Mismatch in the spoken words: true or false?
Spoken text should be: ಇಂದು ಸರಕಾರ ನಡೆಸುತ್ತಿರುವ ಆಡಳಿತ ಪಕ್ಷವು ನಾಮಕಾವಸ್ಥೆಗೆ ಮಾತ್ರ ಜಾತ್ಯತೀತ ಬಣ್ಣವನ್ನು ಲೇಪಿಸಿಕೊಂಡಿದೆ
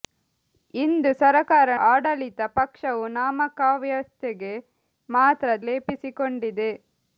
true